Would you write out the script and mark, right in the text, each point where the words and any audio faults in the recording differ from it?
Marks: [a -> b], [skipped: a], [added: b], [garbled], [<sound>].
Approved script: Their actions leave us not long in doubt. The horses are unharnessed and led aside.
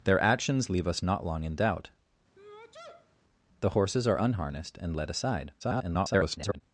Their actions leave us not long in doubt. [sneeze] The horses are unharnessed and led aside. [garbled]